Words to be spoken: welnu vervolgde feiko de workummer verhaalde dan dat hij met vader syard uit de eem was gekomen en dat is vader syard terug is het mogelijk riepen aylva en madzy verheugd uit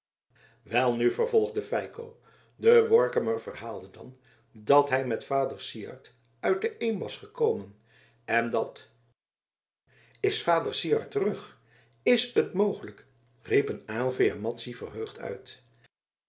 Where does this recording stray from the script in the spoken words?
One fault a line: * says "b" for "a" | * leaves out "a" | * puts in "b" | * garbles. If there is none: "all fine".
all fine